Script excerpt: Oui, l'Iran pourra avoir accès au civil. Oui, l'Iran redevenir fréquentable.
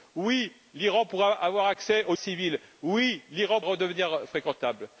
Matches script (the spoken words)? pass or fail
pass